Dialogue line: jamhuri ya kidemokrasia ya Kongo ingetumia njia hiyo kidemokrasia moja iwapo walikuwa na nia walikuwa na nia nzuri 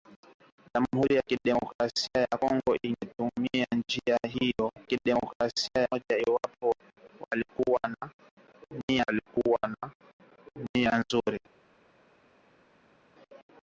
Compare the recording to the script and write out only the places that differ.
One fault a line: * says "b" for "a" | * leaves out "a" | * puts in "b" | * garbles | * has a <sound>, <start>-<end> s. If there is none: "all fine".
all fine